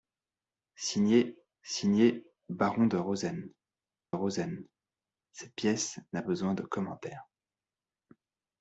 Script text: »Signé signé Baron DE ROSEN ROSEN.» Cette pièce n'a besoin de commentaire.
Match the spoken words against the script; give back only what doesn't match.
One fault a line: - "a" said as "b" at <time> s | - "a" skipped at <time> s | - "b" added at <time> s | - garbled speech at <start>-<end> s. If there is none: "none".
none